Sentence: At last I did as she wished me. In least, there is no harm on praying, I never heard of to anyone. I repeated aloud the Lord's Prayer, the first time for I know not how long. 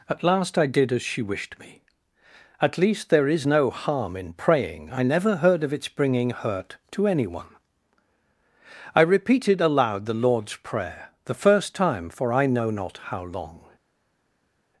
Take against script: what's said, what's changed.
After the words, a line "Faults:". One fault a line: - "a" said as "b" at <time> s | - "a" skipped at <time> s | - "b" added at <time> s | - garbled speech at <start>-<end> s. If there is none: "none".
At last I did as she wished me. At least, there is no harm in praying, I never heard of its bringing hurt to anyone. I repeated aloud the Lord's Prayer, the first time for I know not how long.
Faults:
- "In" said as "At" at 2.6 s
- "on" said as "in" at 4.2 s
- "its bringing hurt" added at 5.7 s